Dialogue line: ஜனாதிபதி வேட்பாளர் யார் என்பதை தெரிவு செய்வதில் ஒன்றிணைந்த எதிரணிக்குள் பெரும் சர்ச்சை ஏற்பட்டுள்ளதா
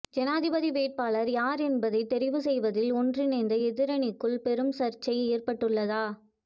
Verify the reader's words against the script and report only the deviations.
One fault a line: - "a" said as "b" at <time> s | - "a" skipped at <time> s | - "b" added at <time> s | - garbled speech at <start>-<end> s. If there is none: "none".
none